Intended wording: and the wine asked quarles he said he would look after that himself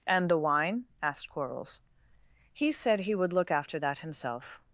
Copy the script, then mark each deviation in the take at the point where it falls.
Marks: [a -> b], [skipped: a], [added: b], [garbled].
and the wine asked quarles he said he would look after that himself